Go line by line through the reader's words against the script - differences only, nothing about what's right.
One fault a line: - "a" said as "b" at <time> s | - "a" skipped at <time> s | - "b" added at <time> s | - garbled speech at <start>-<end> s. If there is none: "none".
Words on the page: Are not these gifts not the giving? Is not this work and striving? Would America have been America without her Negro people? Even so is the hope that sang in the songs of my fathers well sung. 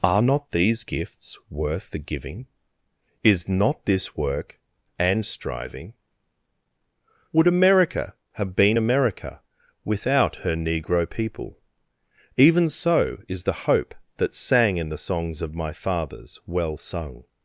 - "not" said as "worth" at 1.5 s